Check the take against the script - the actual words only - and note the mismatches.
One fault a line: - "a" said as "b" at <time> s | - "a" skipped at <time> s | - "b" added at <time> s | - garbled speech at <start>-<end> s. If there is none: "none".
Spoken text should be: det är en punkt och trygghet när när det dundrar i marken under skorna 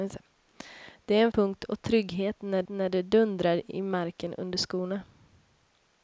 none